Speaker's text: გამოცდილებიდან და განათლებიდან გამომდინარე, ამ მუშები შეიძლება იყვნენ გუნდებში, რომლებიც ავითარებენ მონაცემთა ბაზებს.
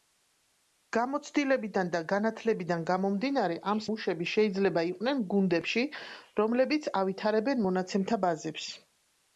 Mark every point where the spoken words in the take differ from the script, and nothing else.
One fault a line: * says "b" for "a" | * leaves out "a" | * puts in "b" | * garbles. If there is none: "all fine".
all fine